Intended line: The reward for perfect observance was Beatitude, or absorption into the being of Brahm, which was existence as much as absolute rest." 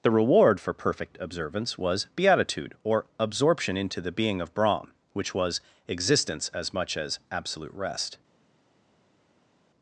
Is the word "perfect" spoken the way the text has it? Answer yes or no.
yes